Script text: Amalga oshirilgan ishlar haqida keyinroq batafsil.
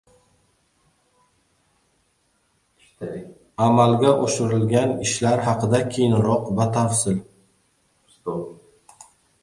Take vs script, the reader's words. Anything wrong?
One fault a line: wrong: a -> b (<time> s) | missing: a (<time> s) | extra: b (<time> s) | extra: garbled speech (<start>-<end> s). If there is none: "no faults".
no faults